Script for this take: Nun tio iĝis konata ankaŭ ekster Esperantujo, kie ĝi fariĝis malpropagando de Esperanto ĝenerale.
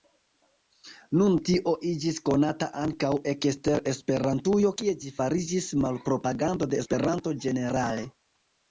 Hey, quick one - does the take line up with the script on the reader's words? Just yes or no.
yes